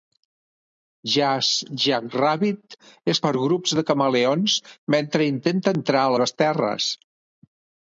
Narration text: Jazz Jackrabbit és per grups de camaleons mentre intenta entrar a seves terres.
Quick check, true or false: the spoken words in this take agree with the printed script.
true